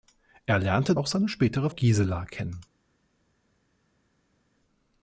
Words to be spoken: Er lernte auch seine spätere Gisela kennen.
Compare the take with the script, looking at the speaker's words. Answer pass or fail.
pass